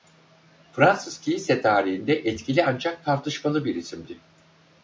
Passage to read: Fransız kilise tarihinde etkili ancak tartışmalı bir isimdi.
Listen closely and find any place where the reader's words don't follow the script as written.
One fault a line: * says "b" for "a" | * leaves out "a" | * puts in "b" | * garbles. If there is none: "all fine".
all fine